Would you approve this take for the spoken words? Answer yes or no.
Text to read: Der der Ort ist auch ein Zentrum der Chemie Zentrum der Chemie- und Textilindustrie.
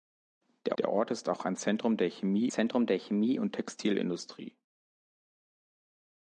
yes